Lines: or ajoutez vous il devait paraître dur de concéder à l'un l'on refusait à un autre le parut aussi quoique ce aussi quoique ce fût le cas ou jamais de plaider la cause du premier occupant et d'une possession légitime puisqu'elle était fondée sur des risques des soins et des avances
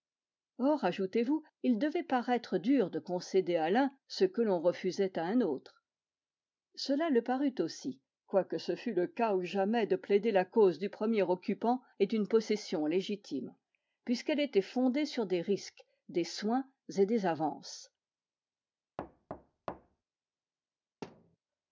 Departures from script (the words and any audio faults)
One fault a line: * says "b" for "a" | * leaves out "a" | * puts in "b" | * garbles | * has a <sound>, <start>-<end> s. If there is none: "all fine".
* puts in "ce que"
* puts in "cela"
* leaves out "aussi quoique ce"
* has a thud, 19.0-20.0 s
* has a thud, 21.0-21.4 s